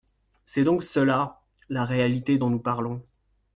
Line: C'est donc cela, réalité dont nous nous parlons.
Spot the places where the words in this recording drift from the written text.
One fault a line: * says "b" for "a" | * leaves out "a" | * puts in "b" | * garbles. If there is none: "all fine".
* puts in "la"
* leaves out "nous"